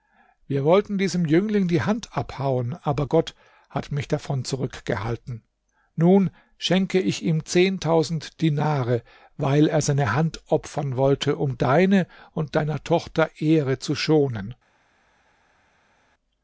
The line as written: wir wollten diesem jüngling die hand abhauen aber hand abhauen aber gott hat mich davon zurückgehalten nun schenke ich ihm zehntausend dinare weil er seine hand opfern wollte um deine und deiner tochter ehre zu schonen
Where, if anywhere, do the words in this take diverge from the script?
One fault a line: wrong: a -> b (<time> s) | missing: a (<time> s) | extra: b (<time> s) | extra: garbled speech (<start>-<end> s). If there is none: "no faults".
missing: hand abhauen aber (3.0 s)